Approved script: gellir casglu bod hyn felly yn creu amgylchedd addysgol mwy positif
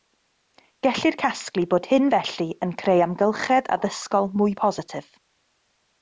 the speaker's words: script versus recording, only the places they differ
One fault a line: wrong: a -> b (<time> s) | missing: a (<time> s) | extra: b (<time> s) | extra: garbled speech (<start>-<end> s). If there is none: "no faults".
no faults